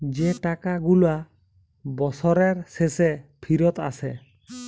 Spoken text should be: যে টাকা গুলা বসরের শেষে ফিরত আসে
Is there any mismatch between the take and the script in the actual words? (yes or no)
no